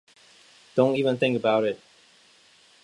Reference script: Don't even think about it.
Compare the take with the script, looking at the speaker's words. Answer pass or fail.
pass